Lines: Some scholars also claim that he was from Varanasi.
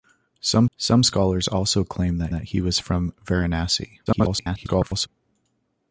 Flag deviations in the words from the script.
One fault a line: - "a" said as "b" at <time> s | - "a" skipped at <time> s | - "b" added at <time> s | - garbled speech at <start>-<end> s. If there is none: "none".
- "some" added at 0.8 s
- "that" added at 2.3 s
- garbled speech at 4.1-5.1 s